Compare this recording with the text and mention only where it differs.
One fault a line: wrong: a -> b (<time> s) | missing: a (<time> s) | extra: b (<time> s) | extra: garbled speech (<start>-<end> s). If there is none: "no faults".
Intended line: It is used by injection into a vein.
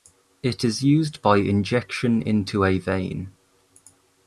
no faults